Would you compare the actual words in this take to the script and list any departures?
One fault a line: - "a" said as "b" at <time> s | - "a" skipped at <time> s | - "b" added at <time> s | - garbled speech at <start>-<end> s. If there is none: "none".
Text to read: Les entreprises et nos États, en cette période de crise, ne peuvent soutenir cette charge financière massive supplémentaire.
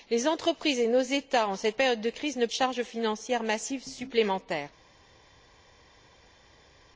- "peuvent soutenir cette" skipped at 2.5 s